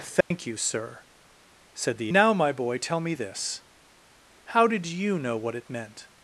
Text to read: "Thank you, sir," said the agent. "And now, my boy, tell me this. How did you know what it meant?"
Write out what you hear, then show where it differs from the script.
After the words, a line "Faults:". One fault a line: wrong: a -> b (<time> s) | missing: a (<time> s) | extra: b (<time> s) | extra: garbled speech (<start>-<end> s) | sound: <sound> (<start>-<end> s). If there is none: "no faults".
"Thank you, sir," said the now, my boy, tell me this. How did you know what it meant?"
Faults:
sound: dropout (0.2-0.3 s)
missing: agent And (2.1 s)